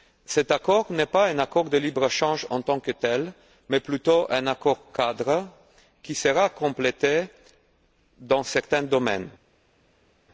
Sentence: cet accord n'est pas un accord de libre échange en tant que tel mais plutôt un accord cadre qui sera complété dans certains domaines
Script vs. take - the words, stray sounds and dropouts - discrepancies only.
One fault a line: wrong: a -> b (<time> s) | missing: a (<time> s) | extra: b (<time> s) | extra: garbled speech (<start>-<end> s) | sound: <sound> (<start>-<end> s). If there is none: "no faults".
no faults